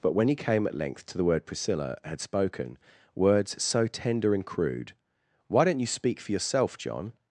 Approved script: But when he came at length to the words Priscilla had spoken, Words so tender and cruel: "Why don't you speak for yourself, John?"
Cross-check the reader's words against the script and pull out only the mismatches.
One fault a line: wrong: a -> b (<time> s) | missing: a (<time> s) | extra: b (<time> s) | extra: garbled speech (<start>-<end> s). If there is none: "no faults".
wrong: words -> word (1.2 s)
wrong: cruel -> crude (4.5 s)